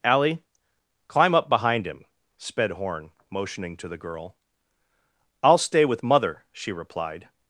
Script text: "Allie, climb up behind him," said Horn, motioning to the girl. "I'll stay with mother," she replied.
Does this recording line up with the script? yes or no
no